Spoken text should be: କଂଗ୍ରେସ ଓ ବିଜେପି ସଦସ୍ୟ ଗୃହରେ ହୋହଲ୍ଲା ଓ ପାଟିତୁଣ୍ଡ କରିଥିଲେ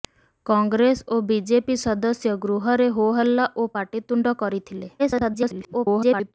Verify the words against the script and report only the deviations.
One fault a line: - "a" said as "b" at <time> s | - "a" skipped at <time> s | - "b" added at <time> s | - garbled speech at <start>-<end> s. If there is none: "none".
- garbled speech at 5.0-6.3 s